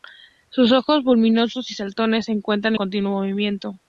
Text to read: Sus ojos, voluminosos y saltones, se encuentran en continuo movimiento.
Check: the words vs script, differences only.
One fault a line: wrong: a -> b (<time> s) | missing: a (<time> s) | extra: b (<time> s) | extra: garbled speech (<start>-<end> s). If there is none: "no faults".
missing: en (2.7 s)